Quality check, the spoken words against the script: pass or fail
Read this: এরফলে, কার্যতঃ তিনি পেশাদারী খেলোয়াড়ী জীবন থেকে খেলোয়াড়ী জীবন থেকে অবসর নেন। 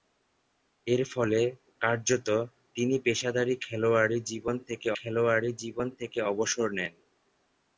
pass